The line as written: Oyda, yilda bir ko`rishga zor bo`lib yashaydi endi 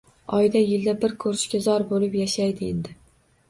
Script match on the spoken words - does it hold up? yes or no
yes